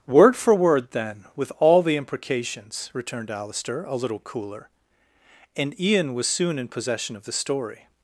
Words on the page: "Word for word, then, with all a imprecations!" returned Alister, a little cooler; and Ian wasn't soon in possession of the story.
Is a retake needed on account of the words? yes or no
yes